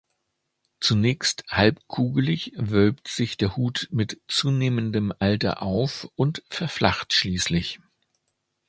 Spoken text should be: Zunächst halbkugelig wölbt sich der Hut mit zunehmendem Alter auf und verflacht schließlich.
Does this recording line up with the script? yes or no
yes